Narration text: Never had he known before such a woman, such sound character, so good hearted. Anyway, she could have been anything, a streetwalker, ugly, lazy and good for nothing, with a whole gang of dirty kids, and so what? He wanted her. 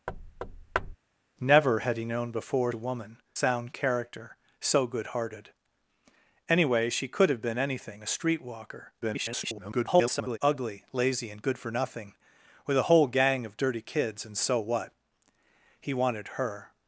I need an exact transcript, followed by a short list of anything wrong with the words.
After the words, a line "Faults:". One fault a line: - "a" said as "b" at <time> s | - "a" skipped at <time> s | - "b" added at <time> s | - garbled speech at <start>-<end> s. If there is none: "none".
Never had he known before a woman, sound character, so good hearted. Anyway, she could have been anything, a streetwalker, [garbled] ugly, lazy and good for nothing, with a whole gang of dirty kids, and so what? He wanted her.
Faults:
- "such" skipped at 2.7 s
- "such" skipped at 3.2 s
- garbled speech at 9.0-10.4 s